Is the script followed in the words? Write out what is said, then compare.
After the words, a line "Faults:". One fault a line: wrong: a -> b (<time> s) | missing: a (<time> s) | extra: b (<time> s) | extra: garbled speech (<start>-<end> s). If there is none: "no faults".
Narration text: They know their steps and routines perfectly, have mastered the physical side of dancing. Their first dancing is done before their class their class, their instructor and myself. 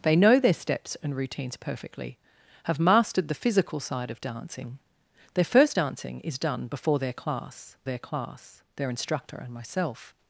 They know their steps and routines perfectly, have mastered the physical side of dancing. Their first dancing is done before their class their class, their instructor and myself.
Faults:
no faults